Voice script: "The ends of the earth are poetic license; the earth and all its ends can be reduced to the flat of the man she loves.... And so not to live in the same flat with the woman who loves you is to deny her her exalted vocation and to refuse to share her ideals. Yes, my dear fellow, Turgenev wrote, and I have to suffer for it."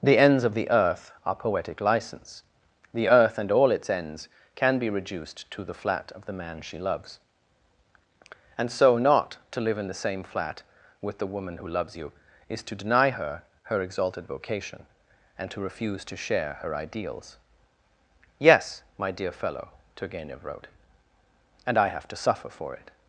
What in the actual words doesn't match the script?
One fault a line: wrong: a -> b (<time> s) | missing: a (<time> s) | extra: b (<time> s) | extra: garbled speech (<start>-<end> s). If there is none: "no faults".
no faults